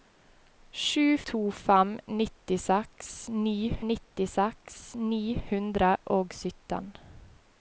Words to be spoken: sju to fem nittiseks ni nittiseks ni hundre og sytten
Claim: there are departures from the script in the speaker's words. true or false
false